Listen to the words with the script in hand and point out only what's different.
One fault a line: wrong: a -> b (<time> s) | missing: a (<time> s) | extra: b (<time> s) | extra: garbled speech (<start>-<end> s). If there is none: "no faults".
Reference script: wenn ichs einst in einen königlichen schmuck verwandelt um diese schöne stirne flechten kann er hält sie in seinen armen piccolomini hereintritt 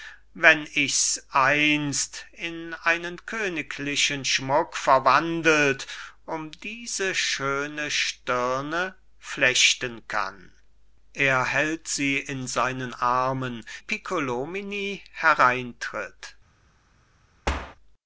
no faults